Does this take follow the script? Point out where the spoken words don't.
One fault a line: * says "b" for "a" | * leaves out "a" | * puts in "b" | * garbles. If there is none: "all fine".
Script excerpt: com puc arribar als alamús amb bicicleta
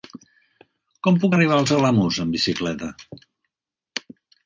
all fine